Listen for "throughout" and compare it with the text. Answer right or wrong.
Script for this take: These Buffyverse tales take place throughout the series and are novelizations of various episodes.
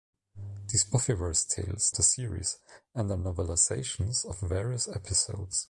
wrong